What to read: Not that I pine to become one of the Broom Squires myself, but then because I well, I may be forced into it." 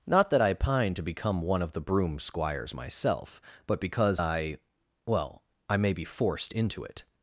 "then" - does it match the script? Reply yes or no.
no